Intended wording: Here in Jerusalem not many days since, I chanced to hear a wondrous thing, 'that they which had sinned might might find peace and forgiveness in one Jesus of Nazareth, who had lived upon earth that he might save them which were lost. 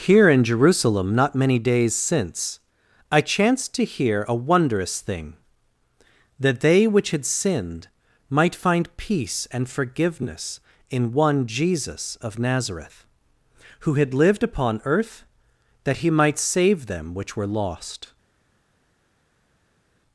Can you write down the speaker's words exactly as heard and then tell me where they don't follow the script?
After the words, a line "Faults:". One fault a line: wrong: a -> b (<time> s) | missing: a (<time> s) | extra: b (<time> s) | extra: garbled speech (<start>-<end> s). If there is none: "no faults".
Here in Jerusalem not many days since, I chanced to hear a wondrous thing, 'that they which had sinned might find peace and forgiveness in one Jesus of Nazareth, who had lived upon earth that he might save them which were lost.
Faults:
missing: might (8.6 s)